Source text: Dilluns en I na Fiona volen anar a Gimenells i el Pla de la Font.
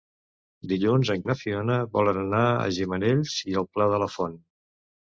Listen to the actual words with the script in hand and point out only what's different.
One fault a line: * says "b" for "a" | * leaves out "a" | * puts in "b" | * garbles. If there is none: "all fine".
all fine